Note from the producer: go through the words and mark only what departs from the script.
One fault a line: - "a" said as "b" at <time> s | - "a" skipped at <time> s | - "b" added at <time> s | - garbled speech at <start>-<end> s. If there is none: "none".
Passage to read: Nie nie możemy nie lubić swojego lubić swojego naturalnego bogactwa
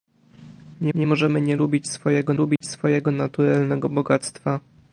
none